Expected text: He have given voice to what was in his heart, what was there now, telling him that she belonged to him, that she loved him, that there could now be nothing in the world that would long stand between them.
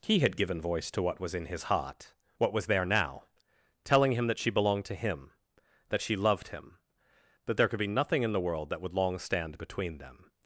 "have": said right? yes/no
no